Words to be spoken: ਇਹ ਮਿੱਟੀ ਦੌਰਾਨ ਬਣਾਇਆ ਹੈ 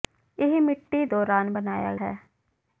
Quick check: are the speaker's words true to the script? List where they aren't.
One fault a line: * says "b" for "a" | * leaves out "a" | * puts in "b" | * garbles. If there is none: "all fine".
all fine